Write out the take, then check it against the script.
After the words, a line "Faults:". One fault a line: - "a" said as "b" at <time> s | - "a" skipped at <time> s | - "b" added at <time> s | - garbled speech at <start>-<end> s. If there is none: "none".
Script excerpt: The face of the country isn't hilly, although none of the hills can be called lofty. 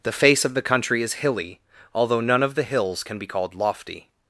The face of the country is hilly, although none of the hills can be called lofty.
Faults:
- "isn't" said as "is" at 1.0 s